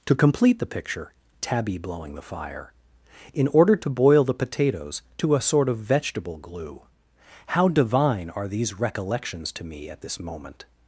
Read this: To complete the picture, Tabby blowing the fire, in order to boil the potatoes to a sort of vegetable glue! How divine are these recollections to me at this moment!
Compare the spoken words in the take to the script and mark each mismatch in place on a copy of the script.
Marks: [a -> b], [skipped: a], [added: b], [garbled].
To complete the picture, Tabby blowing the fire, in order to boil the potatoes to a sort of vegetable glue! How divine are these recollections to me at this moment!